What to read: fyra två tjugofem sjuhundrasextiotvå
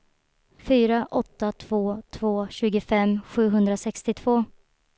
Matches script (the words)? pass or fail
fail